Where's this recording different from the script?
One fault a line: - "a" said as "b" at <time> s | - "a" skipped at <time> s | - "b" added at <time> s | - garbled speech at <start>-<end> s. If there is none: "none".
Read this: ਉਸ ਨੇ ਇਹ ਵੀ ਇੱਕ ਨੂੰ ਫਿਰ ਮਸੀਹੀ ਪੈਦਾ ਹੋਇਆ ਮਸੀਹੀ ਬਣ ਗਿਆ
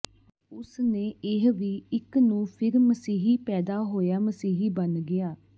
none